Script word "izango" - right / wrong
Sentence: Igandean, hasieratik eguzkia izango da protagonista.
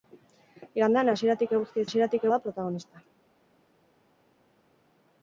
wrong